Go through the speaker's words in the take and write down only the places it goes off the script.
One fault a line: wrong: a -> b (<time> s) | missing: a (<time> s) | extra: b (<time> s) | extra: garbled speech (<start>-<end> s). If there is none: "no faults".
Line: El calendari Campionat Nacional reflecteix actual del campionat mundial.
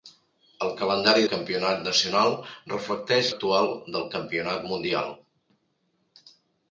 no faults